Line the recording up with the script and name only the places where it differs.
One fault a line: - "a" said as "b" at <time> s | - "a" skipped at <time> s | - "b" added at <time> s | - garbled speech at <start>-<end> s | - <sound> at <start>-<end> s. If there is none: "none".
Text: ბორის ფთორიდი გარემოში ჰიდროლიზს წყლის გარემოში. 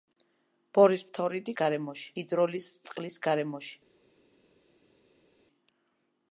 none